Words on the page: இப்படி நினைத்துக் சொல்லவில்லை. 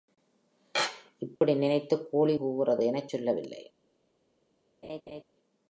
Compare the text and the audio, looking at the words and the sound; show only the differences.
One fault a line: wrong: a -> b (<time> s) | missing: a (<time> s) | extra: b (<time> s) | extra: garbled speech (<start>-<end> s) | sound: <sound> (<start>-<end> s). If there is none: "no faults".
sound: dropout (1.4-1.4 s)
extra: கோழி கூவுகிறது எனச் (2.1 s)
sound: laugh (4.8-5.2 s)